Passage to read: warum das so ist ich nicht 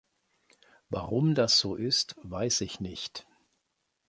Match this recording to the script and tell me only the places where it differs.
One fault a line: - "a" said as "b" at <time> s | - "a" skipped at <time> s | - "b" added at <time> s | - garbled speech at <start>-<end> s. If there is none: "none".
- "weiß" added at 2.2 s